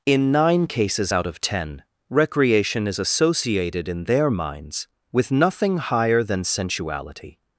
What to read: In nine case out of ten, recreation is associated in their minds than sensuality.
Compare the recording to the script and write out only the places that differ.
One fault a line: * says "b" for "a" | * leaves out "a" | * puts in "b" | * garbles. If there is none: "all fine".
* says "cases" for "case"
* puts in "with nothing higher"